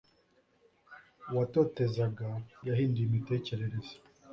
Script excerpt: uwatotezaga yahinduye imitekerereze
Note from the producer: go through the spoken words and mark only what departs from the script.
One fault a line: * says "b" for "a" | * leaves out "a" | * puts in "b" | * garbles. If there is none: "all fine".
all fine